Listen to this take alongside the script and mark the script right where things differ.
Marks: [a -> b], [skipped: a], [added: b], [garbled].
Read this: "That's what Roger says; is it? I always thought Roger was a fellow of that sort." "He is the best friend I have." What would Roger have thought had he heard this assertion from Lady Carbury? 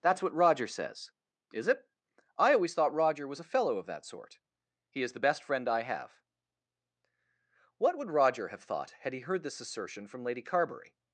"That's what Roger says; is it? I always thought Roger was a fellow of that sort." "He is the best friend I have." What would Roger have thought had he heard this assertion from Lady Carbury?